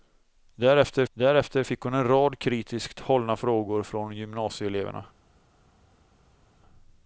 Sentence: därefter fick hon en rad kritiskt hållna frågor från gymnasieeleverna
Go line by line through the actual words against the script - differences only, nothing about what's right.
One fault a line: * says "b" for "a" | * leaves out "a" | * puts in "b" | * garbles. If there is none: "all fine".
* puts in "därefter"